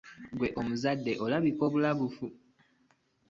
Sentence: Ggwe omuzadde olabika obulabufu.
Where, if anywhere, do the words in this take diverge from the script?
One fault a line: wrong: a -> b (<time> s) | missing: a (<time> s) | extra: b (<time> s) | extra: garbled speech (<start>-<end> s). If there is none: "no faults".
no faults